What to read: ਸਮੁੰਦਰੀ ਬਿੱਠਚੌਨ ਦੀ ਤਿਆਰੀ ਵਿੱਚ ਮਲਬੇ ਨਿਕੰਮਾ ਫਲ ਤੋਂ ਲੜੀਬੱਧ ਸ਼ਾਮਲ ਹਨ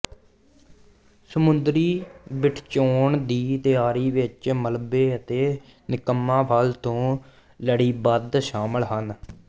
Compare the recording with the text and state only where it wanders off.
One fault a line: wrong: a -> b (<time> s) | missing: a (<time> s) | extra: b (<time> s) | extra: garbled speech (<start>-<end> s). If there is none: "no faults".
extra: ਅਤੇ (5.1 s)